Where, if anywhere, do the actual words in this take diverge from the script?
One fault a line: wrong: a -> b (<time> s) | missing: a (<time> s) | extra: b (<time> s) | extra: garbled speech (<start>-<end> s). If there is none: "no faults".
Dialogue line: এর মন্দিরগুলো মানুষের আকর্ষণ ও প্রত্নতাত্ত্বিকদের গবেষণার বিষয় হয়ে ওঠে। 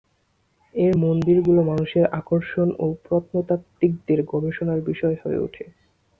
no faults